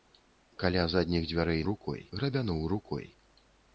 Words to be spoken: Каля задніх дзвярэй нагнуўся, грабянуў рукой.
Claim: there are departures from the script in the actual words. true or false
true